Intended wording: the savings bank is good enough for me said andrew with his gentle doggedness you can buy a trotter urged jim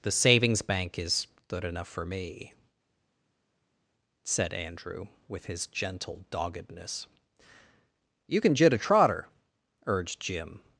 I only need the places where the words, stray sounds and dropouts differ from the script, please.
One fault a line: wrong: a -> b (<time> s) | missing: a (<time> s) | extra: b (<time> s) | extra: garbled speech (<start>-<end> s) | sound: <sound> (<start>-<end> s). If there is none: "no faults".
wrong: buy -> jit (8.5 s)